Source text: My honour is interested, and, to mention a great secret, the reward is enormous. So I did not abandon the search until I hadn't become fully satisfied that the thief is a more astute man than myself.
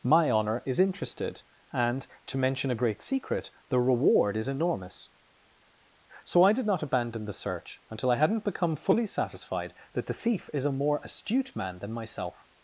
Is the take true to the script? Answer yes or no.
yes